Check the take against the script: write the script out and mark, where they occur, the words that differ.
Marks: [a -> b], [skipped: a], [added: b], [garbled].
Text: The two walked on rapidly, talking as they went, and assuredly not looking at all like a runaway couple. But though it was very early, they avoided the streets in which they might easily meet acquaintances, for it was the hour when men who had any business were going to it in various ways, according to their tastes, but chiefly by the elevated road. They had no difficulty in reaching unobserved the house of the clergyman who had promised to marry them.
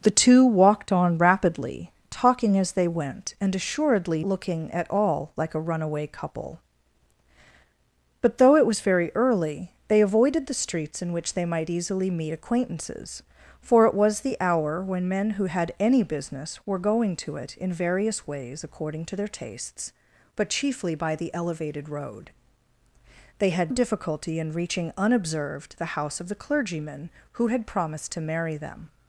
The two walked on rapidly, talking as they went, and assuredly [skipped: not] looking at all like a runaway couple. But though it was very early, they avoided the streets in which they might easily meet acquaintances, for it was the hour when men who had any business were going to it in various ways, according to their tastes, but chiefly by the elevated road. They had [skipped: no] difficulty in reaching unobserved the house of the clergyman who had promised to marry them.